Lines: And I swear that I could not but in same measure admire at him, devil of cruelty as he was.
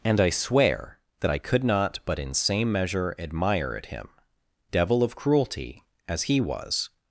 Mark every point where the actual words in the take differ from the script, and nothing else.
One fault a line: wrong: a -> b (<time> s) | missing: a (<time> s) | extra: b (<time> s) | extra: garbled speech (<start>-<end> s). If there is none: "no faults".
no faults